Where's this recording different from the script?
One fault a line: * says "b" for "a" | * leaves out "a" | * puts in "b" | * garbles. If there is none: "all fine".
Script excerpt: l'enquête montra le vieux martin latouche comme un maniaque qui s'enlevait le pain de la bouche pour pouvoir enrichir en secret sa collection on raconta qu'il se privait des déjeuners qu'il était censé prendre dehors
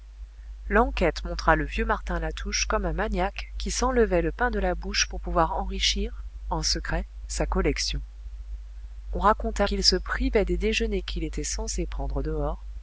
all fine